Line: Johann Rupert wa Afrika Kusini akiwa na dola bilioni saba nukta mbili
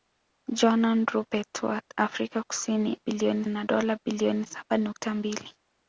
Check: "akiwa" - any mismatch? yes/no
yes